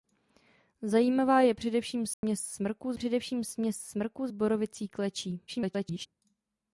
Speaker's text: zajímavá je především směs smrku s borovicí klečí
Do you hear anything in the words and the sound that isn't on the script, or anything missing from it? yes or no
yes